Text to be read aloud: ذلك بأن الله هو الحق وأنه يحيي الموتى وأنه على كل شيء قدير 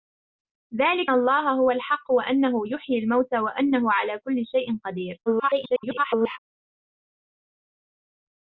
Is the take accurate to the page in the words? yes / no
no